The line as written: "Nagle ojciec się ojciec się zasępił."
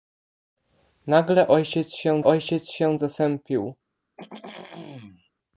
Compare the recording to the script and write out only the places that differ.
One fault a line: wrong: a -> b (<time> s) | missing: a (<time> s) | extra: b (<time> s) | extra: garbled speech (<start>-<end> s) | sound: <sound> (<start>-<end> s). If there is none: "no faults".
sound: throat clearing (4.2-5.3 s)